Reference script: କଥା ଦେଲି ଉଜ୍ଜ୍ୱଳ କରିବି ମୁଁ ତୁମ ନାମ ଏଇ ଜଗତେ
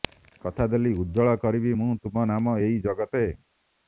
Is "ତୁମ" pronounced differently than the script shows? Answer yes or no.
no